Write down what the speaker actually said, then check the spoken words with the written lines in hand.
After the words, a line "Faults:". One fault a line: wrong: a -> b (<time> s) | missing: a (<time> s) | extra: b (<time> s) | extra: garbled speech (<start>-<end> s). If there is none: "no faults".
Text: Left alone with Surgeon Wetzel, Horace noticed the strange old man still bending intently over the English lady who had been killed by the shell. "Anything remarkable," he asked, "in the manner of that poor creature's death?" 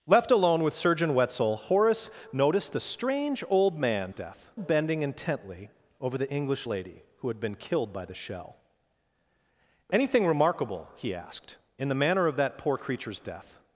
Left alone with Surgeon Wetzel, Horace noticed the strange old man death bending intently over the English lady who had been killed by the shell. "Anything remarkable," he asked, "in the manner of that poor creature's death?"
Faults:
wrong: still -> death (4.1 s)